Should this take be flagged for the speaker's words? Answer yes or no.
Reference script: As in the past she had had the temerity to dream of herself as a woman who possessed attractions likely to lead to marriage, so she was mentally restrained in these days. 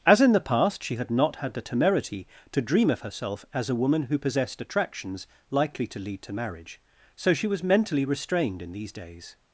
yes